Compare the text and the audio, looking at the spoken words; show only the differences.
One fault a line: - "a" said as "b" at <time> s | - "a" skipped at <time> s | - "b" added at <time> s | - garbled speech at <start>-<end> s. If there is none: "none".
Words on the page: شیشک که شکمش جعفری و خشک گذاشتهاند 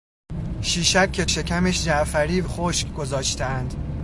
none